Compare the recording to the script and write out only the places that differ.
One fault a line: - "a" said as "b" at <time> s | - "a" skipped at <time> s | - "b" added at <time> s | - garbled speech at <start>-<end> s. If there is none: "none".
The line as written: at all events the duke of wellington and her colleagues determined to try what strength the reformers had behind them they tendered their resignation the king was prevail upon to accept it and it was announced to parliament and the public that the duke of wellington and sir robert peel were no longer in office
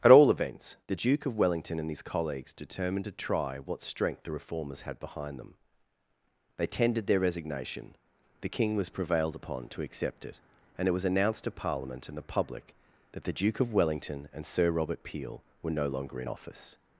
- "her" said as "his" at 1.9 s
- "prevail" said as "prevailed" at 9.0 s